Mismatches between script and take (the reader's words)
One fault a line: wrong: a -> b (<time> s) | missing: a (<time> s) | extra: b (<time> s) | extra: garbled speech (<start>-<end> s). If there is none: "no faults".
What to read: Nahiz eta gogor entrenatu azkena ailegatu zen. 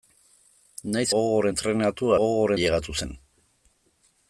missing: eta (1.1 s)
wrong: azkena -> gogor (2.2 s)